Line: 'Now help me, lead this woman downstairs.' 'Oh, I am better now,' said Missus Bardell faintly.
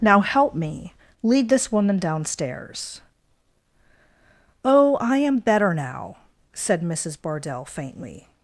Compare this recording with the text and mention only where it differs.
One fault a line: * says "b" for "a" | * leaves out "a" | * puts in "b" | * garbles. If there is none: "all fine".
all fine